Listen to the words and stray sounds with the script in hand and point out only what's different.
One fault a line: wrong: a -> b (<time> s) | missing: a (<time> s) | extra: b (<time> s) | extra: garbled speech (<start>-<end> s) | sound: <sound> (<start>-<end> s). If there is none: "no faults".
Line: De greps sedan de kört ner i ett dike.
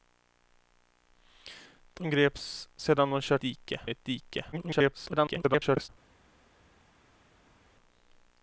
wrong: ner -> dike (3.4 s)
extra: garbled speech (4.5-5.9 s)